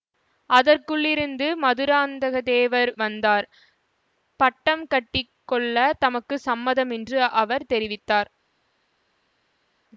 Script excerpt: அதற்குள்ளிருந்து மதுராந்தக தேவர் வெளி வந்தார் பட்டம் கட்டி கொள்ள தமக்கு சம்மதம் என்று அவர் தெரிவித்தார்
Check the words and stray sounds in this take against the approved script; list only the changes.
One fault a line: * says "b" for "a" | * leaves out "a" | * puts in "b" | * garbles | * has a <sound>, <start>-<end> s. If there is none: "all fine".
* leaves out "வெளி"